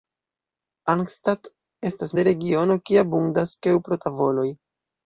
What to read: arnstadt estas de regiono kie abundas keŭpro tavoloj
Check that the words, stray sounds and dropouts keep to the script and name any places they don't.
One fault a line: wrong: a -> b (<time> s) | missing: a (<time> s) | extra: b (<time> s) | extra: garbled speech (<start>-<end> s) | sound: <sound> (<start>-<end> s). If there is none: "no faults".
no faults